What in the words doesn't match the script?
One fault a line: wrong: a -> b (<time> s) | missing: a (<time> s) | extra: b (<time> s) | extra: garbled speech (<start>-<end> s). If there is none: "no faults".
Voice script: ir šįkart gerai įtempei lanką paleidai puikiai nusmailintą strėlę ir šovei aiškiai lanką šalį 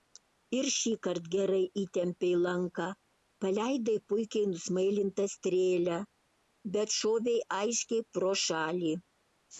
wrong: ir -> bet (6.8 s)
wrong: lanką -> pro (8.2 s)